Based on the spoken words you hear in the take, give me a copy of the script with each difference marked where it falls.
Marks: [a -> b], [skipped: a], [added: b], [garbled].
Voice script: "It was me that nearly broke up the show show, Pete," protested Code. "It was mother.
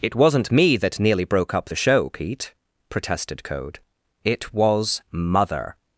"It [was -> wasn't] me that nearly broke up the show [skipped: show,] Pete," protested Code. "It was mother.